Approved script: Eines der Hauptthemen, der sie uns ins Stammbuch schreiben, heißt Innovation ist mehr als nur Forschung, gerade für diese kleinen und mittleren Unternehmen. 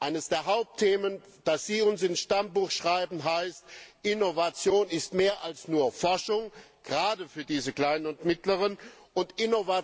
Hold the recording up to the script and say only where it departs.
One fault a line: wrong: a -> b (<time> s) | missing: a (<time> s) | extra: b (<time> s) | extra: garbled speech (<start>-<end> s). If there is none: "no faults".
wrong: der -> das (1.4 s)